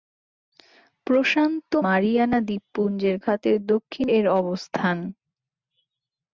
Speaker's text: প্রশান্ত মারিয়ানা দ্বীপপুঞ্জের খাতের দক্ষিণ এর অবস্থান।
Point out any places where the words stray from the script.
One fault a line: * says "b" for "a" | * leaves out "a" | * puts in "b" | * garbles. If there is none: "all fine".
all fine